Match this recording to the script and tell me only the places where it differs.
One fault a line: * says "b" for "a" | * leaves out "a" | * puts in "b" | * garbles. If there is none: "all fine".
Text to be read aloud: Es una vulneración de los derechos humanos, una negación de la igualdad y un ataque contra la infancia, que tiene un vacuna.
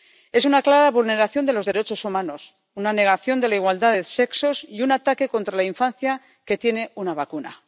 * puts in "clara"
* puts in "de sexos"
* says "una" for "un"